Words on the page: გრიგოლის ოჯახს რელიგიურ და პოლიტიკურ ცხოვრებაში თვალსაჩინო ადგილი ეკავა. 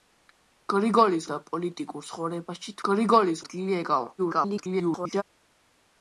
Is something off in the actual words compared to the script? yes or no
yes